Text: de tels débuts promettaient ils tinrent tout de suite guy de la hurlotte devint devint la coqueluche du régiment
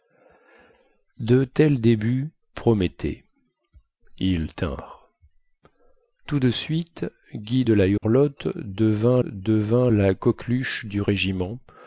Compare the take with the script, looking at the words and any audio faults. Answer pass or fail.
fail